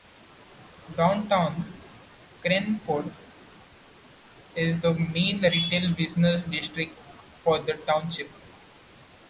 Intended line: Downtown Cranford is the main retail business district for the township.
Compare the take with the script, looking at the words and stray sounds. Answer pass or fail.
pass